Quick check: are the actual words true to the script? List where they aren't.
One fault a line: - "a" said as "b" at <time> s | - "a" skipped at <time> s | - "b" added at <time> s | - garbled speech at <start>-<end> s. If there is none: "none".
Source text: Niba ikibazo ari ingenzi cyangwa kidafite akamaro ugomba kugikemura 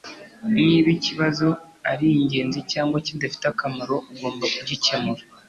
none